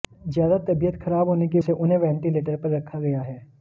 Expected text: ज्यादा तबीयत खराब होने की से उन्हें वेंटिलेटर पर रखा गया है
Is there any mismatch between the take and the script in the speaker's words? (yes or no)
no